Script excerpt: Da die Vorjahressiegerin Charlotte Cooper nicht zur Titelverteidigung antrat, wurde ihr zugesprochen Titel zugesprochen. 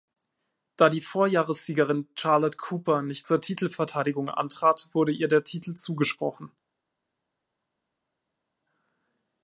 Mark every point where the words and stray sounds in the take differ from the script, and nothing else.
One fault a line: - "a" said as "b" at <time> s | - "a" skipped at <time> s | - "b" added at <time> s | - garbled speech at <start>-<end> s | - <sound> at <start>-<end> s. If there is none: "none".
- "zugesprochen" said as "der" at 5.3 s